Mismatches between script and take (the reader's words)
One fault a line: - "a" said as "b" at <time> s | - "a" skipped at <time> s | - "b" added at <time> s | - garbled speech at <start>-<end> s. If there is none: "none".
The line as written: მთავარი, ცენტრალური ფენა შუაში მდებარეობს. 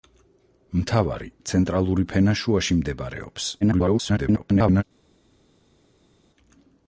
- garbled speech at 3.6-4.8 s